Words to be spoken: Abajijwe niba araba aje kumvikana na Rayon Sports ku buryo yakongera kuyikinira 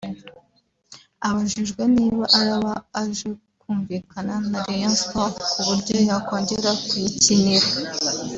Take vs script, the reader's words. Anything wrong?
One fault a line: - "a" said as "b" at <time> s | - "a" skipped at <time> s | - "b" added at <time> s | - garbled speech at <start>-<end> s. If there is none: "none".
none